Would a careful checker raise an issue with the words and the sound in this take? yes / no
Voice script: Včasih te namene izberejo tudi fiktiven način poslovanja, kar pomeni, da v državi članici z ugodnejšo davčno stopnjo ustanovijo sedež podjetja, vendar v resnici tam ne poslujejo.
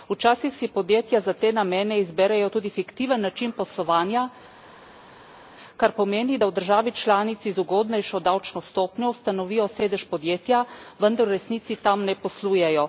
yes